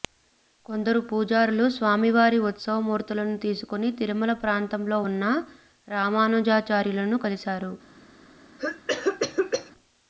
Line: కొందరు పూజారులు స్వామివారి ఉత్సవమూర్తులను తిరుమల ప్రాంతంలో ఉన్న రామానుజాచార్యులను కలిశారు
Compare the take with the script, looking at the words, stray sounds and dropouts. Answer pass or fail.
fail